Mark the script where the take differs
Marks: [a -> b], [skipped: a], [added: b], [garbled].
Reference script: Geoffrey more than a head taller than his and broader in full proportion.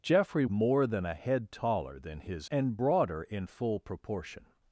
Geoffrey more than a head taller than his and broader in full proportion.